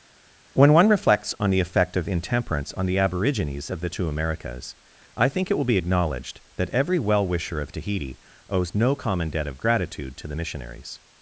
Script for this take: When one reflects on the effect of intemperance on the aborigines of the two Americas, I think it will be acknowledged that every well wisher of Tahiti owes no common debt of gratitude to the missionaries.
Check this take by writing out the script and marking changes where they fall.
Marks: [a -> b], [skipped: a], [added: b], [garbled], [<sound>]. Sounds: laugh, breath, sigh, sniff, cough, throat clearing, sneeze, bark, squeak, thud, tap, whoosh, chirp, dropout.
When one reflects on the effect of intemperance on the aborigines of the two Americas, I think it will be acknowledged that every well wisher of Tahiti owes no common debt of gratitude to the missionaries.